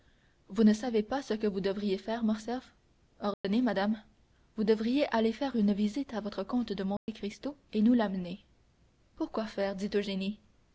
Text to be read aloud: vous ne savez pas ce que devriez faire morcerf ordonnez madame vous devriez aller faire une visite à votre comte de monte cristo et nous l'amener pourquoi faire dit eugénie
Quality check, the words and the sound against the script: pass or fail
fail